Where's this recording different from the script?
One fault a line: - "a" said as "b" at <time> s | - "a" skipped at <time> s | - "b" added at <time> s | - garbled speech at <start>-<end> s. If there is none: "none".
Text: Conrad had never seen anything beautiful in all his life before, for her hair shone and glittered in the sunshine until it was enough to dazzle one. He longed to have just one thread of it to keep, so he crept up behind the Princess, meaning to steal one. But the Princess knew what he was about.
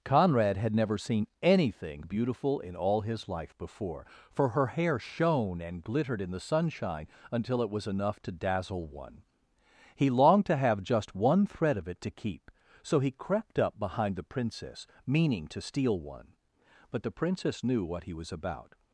none